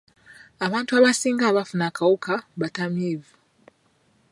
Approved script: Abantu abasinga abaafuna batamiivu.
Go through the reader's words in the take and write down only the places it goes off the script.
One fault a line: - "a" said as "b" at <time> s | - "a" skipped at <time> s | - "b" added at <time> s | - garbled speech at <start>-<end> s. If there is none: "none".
- "akawuka" added at 1.9 s